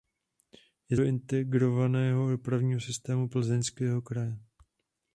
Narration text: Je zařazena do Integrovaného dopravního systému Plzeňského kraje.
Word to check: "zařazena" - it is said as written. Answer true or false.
false